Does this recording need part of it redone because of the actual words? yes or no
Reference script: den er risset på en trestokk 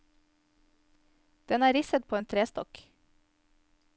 no